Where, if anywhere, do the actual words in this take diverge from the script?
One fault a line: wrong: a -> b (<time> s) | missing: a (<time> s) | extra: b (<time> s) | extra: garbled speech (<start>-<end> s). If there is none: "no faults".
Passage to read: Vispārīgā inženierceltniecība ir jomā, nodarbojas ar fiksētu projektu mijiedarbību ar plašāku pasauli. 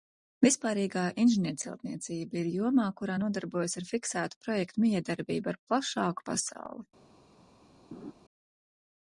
extra: kurā (3.0 s)